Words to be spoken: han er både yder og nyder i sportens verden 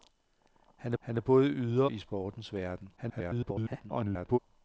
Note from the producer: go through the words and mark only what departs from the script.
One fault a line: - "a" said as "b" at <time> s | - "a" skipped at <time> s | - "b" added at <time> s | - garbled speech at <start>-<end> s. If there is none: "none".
- "han" added at 1.0 s
- "og nyder" skipped at 1.9 s
- garbled speech at 3.0-4.4 s